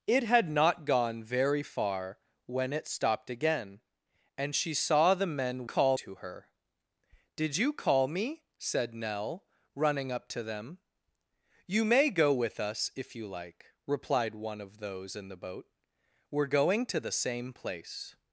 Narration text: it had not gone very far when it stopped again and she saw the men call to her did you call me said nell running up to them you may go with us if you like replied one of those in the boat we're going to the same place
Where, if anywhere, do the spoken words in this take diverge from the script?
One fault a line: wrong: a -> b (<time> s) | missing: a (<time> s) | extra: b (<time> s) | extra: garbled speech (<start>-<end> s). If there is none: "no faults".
no faults